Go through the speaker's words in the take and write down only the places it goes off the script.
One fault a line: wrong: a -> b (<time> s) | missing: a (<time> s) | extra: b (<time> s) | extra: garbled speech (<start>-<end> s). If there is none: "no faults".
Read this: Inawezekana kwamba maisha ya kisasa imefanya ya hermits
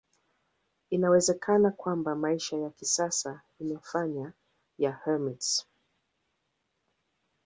no faults